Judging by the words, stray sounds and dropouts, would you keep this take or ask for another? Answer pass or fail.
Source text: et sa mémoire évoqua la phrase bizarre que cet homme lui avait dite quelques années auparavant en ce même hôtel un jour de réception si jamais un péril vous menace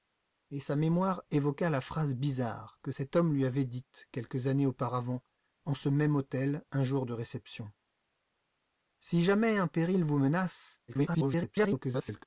fail